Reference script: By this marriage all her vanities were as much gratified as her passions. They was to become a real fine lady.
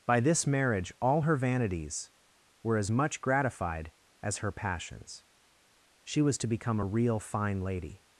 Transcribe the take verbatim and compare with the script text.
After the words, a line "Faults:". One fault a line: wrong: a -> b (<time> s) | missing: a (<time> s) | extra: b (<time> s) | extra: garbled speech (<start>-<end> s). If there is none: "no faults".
By this marriage all her vanities were as much gratified as her passions. She was to become a real fine lady.
Faults:
wrong: They -> She (6.0 s)